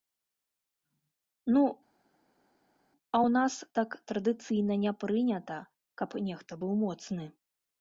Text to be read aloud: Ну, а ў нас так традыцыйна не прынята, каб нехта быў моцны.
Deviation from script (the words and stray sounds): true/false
false